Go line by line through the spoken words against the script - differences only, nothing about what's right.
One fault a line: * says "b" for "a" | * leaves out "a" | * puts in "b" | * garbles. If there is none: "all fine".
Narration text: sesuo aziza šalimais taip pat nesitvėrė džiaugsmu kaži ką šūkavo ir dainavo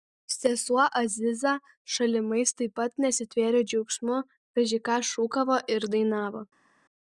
all fine